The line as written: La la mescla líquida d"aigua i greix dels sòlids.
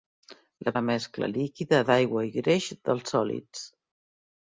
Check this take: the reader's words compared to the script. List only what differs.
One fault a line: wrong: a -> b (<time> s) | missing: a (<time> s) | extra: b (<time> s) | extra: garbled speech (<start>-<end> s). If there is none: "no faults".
no faults